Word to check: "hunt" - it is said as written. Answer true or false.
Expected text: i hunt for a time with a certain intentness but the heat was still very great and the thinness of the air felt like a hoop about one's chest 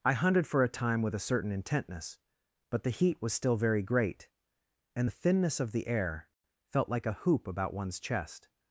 false